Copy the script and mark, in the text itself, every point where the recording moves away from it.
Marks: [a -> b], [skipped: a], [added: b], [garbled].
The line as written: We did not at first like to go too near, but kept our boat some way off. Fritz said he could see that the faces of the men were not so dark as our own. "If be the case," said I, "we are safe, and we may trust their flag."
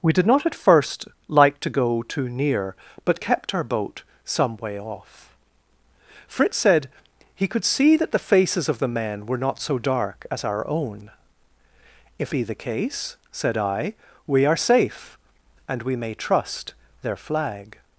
We did not at first like to go too near, but kept our boat some way off. Fritz said he could see that the faces of the men were not so dark as our own. "If be the case," said I, "we are safe, and we may trust their flag."